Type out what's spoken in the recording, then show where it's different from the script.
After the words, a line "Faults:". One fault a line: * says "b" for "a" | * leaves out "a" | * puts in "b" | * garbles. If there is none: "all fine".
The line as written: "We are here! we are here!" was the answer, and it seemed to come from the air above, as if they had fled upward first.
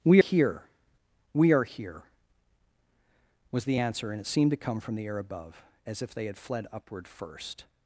"We here! we are here!" was the answer, and it seemed to come from the air above, as if they had fled upward first.
Faults:
* leaves out "are"